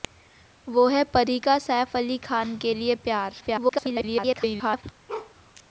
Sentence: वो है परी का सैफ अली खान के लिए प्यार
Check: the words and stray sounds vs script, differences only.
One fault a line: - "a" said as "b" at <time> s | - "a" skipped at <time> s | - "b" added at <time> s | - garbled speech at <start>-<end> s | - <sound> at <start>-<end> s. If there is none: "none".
- garbled speech at 3.4-4.8 s
- bark at 5.1-5.3 s